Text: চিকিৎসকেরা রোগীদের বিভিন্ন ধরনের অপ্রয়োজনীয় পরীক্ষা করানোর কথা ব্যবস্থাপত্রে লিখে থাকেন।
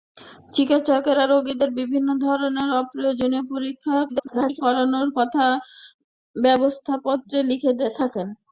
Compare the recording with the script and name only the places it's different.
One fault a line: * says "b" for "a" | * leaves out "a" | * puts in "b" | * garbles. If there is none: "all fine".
* garbles